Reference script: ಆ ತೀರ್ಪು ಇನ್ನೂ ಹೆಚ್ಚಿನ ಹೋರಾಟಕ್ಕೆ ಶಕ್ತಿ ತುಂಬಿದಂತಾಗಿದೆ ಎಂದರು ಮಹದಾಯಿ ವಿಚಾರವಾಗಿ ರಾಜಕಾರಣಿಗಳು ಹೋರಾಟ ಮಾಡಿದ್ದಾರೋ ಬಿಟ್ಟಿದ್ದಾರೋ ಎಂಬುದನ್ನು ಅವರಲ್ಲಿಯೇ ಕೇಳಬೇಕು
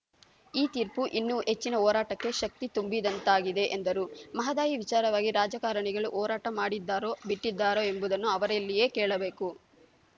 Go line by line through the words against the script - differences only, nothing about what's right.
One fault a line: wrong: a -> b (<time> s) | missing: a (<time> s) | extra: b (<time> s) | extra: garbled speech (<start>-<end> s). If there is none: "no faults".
wrong: ಆ -> ಈ (0.5 s)